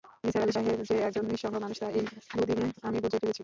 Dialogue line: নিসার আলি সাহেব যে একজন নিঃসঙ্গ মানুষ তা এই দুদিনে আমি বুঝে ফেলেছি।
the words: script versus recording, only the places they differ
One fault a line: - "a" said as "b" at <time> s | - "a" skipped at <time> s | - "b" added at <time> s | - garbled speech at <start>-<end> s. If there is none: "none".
none